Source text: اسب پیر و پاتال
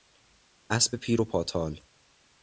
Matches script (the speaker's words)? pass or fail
pass